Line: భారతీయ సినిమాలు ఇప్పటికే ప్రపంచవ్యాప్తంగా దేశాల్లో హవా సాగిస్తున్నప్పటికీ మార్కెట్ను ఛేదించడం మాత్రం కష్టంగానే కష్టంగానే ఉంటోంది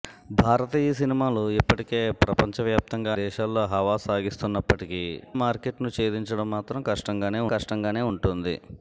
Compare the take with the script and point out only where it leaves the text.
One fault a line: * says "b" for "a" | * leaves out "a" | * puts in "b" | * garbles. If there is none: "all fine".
all fine